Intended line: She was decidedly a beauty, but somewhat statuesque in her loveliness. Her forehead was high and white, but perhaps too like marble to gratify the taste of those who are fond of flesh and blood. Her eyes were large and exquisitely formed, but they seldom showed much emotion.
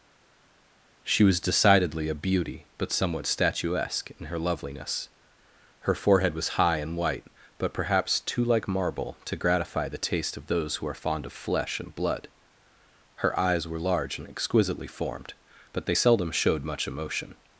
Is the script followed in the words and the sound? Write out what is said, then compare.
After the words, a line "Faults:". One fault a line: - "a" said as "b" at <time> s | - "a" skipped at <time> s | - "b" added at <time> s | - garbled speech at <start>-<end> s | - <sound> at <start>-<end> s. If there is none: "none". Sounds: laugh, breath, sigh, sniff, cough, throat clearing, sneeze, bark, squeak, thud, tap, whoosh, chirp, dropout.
She was decidedly a beauty, but somewhat statuesque in her loveliness. Her forehead was high and white, but perhaps too like marble to gratify the taste of those who are fond of flesh and blood. Her eyes were large and exquisitely formed, but they seldom showed much emotion.
Faults:
none